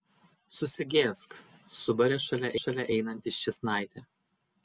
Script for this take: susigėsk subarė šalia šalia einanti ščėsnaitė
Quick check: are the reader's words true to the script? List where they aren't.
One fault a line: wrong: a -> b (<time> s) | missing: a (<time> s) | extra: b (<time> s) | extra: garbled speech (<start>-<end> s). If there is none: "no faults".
no faults